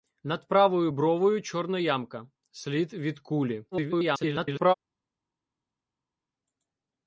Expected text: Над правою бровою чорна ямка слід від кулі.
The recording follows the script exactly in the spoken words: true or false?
false